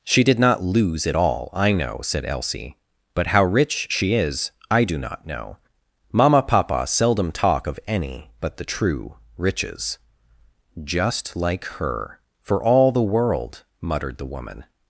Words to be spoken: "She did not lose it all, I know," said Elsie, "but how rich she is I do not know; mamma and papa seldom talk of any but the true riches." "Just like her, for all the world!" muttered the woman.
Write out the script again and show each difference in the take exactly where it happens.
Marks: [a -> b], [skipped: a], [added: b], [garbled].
"She did not lose it all, I know," said Elsie, "but how rich she is I do not know; mamma [skipped: and] papa seldom talk of any but the true riches." "Just like her, for all the world!" muttered the woman.